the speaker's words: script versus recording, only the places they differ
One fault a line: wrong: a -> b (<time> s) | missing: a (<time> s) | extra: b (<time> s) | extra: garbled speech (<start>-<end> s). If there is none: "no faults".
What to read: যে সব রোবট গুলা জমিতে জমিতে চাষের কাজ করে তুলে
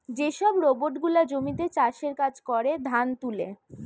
missing: জমিতে (1.6 s)
extra: ধান (2.9 s)